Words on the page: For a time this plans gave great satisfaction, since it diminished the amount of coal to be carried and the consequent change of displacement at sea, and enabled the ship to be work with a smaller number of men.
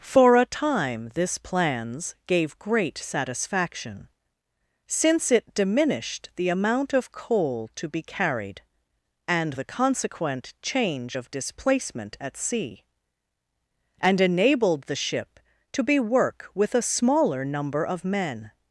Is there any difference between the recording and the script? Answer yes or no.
no